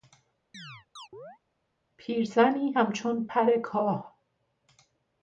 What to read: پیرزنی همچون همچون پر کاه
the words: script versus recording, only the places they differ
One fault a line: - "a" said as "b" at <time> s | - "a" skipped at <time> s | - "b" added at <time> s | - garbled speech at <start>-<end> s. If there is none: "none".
- "همچون" skipped at 3.3 s